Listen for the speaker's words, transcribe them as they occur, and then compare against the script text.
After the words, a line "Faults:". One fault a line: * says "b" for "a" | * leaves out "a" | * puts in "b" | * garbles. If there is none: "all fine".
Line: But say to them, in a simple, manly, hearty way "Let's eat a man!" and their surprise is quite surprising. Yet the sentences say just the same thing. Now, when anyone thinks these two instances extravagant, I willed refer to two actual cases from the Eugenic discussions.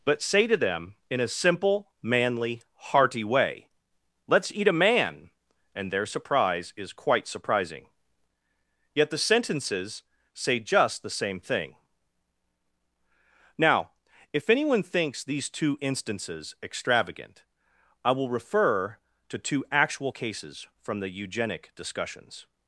But say to them, in a simple, manly, hearty way "Let's eat a man!" and their surprise is quite surprising. Yet the sentences say just the same thing. Now, if anyone thinks these two instances extravagant, I will refer to two actual cases from the Eugenic discussions.
Faults:
* says "if" for "when"
* says "will" for "willed"